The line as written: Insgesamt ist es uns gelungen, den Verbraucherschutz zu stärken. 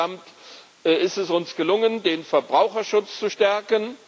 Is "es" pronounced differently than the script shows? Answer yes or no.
no